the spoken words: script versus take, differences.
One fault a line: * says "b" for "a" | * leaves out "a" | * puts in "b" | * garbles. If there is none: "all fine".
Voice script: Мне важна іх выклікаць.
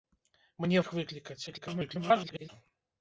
* leaves out "важна"
* garbles